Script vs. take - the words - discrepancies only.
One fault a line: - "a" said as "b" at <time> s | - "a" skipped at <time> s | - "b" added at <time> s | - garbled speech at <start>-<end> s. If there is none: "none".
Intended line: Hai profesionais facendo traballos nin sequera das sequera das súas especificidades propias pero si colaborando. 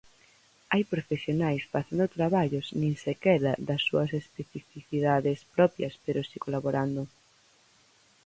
- "sequera das" skipped at 3.8 s